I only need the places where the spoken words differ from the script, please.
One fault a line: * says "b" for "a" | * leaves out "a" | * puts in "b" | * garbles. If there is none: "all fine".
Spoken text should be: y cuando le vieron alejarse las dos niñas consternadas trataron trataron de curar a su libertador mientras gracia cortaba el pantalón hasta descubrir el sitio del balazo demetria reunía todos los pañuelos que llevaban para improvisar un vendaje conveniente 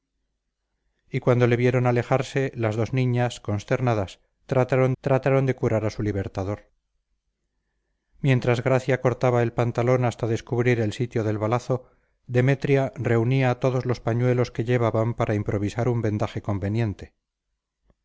all fine